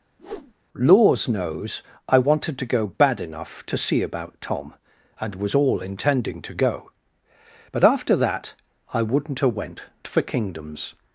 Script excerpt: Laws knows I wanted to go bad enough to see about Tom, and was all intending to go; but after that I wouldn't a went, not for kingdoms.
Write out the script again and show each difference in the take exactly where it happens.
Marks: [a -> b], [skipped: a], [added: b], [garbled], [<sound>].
[whoosh] Laws knows I wanted to go bad enough to see about Tom, and was all intending to go; but after that I wouldn't a went, [skipped: not] for kingdoms.